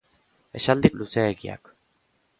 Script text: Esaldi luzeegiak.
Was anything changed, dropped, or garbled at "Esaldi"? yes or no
no